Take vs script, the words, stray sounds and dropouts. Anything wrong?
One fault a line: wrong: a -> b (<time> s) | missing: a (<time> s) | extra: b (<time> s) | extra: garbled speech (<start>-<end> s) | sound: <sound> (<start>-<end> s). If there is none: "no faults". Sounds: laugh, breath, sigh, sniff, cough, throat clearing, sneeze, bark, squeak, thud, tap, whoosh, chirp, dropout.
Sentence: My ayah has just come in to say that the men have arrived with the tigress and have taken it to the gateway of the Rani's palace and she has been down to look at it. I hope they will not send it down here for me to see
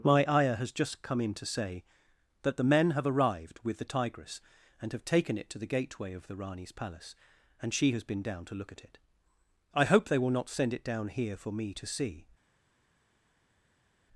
no faults